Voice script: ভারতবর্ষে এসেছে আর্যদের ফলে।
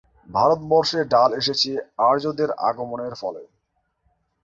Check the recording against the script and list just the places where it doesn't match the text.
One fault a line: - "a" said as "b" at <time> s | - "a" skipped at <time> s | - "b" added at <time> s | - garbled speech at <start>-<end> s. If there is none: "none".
- "ডাল" added at 1.1 s
- "আগমনের" added at 2.7 s